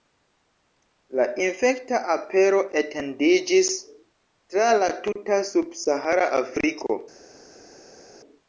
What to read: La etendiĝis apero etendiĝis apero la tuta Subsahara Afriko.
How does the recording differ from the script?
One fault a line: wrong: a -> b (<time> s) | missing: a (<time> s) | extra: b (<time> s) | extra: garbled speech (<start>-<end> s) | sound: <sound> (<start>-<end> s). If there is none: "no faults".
wrong: etendiĝis -> infekta (1.5 s)
wrong: apero -> tra (4.6 s)